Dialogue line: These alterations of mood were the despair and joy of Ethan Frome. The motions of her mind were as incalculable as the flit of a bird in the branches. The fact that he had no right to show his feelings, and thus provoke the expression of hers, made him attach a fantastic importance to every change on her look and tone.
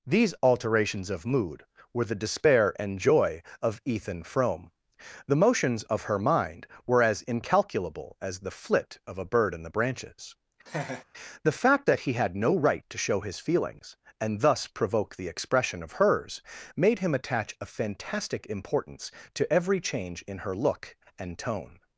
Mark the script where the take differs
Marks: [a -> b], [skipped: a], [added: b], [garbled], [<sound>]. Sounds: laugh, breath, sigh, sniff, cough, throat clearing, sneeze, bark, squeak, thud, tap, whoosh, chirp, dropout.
These alterations of mood were the despair and joy of Ethan Frome. The motions of her mind were as incalculable as the flit of a bird in the branches. [laugh] The fact that he had no right to show his feelings, and thus provoke the expression of hers, made him attach a fantastic importance to every change [on -> in] her look and tone.